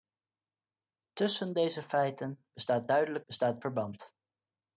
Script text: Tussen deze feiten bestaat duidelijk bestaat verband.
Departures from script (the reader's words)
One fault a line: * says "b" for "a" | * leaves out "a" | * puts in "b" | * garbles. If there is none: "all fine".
all fine